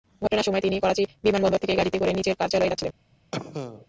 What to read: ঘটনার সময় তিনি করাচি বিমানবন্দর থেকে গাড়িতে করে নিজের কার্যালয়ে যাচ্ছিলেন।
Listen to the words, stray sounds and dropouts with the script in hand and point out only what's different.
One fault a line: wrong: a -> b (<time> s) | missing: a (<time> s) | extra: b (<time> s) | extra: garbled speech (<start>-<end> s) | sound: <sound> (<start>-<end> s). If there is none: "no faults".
sound: dropout (0.3-0.3 s)
sound: cough (3.3-3.9 s)